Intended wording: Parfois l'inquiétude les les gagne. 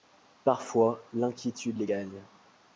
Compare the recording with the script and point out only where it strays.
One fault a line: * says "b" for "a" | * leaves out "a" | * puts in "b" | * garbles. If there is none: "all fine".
* leaves out "les"